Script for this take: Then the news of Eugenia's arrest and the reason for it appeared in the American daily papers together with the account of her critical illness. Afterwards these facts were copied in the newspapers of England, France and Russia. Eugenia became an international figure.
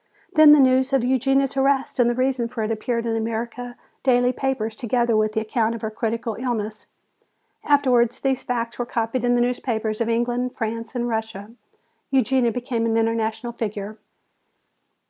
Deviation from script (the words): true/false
false